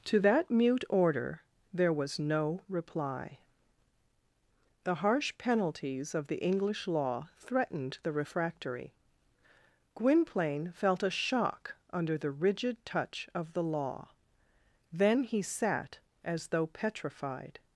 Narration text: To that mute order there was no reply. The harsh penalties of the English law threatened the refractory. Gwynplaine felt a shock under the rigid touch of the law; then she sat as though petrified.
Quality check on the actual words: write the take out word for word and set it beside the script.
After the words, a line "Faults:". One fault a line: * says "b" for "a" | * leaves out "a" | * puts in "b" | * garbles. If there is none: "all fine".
To that mute order there was no reply. The harsh penalties of the English law threatened the refractory. Gwynplaine felt a shock under the rigid touch of the law; then he sat as though petrified.
Faults:
* says "he" for "she"